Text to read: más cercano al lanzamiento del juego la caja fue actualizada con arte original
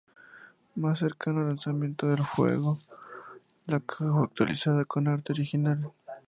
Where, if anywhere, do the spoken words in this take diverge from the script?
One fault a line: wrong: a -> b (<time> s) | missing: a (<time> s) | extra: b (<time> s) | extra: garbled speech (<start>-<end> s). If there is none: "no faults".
no faults